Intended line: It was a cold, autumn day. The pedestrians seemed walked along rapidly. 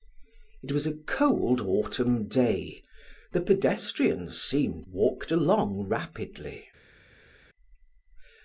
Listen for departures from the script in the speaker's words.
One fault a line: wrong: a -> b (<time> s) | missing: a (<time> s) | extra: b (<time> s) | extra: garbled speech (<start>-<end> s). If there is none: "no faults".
no faults